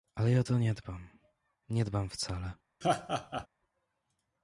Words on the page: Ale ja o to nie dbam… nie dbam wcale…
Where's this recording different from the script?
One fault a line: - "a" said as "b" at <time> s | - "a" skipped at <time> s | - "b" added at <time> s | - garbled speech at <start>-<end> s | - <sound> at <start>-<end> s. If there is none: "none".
- laugh at 2.8-3.5 s